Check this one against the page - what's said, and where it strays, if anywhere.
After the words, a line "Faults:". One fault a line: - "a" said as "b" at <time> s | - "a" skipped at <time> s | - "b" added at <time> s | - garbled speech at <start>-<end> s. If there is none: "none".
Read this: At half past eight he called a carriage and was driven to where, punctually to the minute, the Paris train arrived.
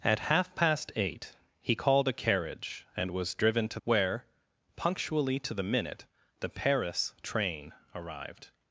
At half past eight he called a carriage and was driven to where, punctually to the minute, the Paris train arrived.
Faults:
none